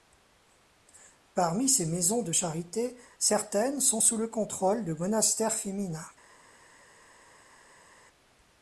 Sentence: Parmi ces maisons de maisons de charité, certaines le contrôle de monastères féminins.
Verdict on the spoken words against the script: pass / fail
fail